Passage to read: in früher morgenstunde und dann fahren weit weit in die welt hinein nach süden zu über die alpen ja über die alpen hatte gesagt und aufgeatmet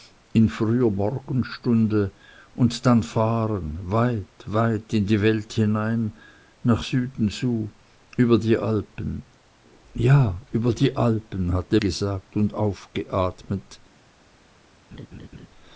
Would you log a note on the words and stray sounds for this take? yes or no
yes